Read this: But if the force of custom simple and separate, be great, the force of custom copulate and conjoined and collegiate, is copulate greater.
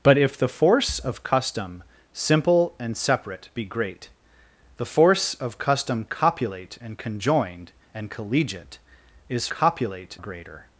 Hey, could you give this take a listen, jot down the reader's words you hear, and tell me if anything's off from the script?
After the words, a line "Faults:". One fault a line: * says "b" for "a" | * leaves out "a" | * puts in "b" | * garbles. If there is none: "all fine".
But if the force of custom simple and separate, be great, the force of custom copulate and conjoined and collegiate, is copulate greater.
Faults:
all fine